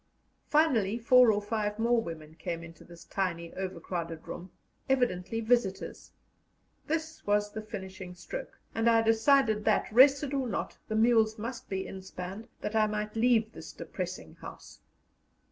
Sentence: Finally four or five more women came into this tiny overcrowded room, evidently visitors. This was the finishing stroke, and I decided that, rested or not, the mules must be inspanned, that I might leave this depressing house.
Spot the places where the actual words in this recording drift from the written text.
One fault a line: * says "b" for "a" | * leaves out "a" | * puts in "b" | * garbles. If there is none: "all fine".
all fine